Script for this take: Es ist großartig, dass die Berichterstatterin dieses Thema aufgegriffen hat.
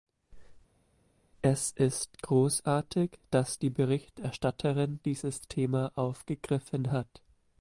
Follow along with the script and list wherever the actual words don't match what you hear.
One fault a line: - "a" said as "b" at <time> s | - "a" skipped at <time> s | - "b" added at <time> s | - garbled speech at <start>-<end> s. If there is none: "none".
none